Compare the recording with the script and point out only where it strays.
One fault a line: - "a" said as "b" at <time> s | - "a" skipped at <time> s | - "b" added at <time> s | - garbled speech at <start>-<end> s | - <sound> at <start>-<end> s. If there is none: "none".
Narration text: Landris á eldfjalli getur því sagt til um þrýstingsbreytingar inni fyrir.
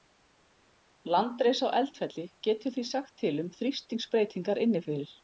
none